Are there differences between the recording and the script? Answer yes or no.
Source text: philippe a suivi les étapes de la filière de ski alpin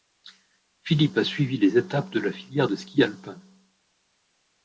no